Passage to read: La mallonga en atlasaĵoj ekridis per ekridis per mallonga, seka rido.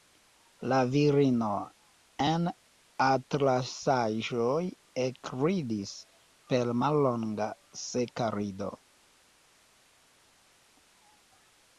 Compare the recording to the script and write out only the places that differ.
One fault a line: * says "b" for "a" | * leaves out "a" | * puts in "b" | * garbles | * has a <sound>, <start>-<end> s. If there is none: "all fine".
* says "virino" for "mallonga"
* leaves out "ekridis per"